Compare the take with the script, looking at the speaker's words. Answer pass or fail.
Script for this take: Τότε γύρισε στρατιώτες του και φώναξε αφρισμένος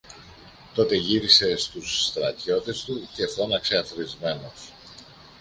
fail